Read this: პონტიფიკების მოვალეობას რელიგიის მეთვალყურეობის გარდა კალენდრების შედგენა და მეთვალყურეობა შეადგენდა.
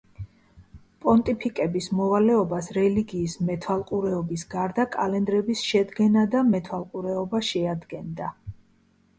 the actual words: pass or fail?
pass